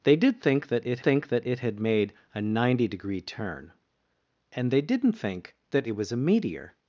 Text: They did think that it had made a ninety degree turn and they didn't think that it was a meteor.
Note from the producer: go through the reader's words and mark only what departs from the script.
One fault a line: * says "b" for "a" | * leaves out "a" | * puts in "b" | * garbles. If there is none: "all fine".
* puts in "think that it"